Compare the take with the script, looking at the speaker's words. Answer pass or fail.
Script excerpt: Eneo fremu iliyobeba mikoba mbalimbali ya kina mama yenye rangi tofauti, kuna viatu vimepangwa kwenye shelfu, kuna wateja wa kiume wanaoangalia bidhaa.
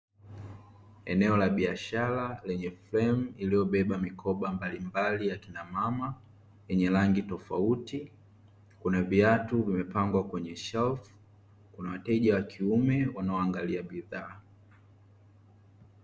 fail